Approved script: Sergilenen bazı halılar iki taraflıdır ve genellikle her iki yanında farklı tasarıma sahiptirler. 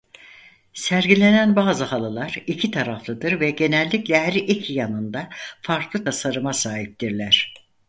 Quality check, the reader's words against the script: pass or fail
pass